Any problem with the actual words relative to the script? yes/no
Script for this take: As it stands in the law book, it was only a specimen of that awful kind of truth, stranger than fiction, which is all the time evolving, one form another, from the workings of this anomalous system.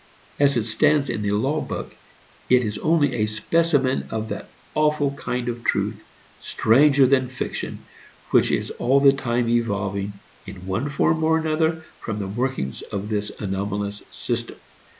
yes